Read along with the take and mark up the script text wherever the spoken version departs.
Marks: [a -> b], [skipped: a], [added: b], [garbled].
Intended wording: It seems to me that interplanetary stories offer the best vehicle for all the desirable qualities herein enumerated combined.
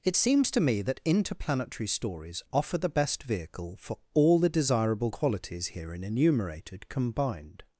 It seems to me that interplanetary stories offer the best vehicle for all the desirable qualities herein enumerated combined.